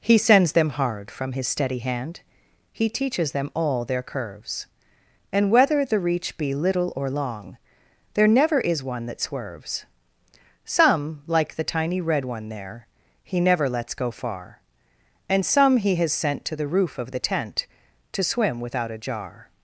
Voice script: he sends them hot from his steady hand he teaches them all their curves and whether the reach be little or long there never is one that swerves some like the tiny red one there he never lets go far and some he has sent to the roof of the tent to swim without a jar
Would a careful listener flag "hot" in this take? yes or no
yes